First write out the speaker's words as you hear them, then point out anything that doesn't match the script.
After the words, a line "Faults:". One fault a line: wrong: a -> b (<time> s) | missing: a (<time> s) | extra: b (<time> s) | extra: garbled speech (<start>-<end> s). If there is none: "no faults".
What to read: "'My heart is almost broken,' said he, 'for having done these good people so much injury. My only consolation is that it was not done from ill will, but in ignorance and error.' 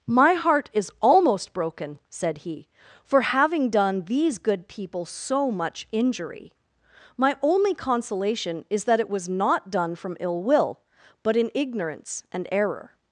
"'My heart is almost broken,' said he, 'for having done these good people so much injury. My only consolation is that it was not done from ill will, but in ignorance and error.'
Faults:
no faults